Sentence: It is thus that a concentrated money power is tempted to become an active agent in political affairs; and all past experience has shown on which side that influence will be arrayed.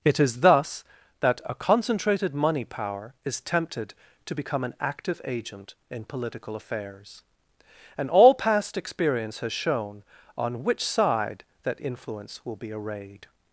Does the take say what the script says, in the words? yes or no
yes